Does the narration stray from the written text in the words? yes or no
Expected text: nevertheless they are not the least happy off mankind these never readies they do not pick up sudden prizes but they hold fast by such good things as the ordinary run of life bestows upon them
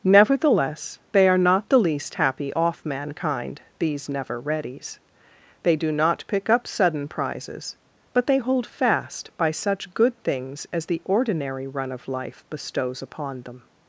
no